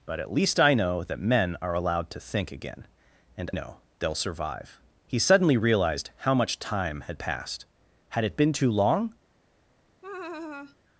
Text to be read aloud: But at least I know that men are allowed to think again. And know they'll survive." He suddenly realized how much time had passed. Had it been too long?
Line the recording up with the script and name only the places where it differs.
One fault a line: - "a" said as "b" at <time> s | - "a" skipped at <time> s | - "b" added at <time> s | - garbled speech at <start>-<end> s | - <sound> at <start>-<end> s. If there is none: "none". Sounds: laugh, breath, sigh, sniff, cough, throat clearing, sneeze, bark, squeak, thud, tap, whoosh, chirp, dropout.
- laugh at 10.0-10.8 s